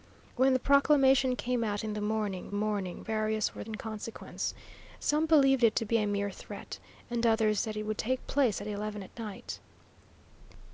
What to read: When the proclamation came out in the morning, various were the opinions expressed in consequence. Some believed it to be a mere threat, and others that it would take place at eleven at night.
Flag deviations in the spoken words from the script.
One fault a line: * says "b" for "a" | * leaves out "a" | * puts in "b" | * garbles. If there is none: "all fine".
* puts in "morning"
* leaves out "the opinions expressed"